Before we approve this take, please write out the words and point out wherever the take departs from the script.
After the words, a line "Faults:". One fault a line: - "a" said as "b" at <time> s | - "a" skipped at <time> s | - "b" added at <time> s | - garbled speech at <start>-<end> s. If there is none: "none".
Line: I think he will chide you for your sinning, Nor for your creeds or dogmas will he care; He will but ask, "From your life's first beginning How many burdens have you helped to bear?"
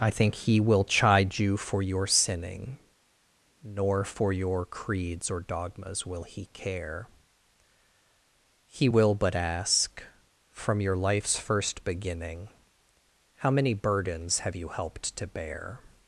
I think he will chide you for your sinning, Nor for your creeds or dogmas will he care; He will but ask, "From your life's first beginning How many burdens have you helped to bear?"
Faults:
none